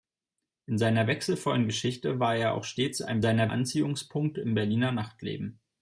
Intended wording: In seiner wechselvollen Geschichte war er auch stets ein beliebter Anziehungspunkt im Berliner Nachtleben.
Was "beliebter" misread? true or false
true